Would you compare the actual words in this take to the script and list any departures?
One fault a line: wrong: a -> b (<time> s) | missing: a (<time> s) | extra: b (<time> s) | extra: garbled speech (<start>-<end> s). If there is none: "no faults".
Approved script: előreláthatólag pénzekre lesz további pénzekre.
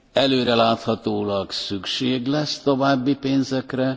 wrong: pénzekre -> szükség (1.5 s)